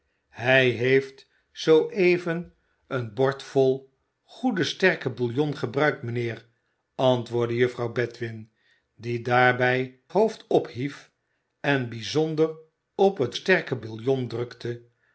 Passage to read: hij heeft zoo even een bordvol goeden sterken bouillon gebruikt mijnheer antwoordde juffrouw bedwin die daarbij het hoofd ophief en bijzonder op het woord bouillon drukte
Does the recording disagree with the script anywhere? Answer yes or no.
yes